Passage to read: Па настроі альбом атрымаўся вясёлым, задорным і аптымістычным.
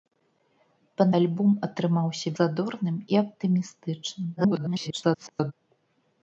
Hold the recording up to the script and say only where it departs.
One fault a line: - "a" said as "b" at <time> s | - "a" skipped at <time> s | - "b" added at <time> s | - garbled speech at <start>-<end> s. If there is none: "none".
- "настроі" skipped at 1.1 s
- "вясёлым" skipped at 2.3 s
- garbled speech at 4.4-5.5 s